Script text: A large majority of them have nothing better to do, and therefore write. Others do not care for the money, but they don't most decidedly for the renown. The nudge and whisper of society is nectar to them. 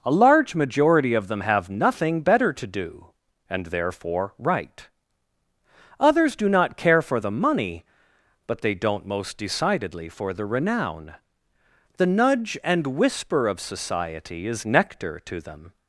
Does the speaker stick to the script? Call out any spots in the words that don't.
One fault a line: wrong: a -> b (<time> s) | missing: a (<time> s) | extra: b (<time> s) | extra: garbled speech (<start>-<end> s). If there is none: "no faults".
no faults